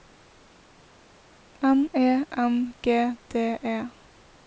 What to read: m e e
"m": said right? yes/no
yes